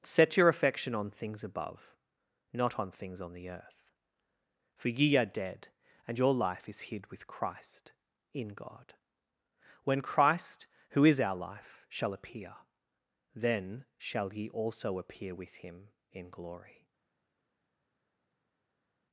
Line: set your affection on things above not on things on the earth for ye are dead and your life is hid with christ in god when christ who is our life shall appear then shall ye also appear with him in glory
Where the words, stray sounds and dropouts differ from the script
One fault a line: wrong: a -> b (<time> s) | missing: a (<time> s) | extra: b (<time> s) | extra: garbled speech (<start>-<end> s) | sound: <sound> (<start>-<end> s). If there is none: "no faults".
no faults